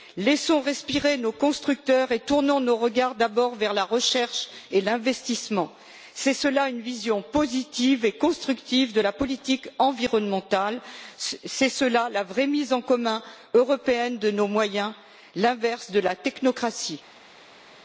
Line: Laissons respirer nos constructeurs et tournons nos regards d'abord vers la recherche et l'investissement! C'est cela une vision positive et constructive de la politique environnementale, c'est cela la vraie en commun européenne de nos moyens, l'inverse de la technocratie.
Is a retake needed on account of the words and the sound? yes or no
yes